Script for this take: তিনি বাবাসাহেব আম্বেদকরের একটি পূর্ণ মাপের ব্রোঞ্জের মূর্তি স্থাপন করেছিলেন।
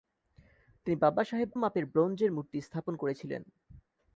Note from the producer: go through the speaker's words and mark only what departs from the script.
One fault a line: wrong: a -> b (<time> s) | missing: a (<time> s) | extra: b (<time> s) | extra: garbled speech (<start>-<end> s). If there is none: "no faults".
missing: আম্বেদকরের একটি পূর্ণ (1.5 s)